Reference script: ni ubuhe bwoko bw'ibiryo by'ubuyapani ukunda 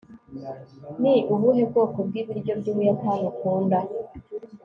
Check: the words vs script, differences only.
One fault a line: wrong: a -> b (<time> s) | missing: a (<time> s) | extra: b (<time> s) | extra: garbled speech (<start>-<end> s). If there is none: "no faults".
no faults